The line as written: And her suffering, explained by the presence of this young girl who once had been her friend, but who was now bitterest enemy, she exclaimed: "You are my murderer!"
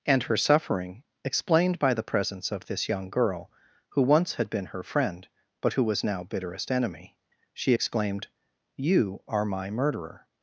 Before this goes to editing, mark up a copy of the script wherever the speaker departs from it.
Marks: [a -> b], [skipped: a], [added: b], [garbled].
And her suffering, explained by the presence of this young girl who once had been her friend, but who was now bitterest enemy, she exclaimed: "You are my murderer!"